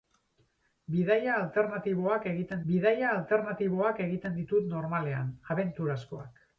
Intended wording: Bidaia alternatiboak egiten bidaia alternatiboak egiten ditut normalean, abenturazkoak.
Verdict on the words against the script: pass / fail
pass